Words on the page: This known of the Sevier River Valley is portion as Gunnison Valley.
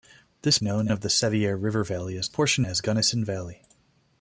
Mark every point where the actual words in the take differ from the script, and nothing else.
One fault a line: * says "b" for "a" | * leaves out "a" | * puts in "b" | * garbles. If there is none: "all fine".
all fine